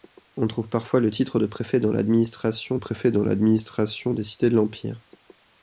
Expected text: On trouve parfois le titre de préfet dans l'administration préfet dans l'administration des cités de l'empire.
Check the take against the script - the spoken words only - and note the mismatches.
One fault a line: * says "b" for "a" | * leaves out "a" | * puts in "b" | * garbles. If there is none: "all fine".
all fine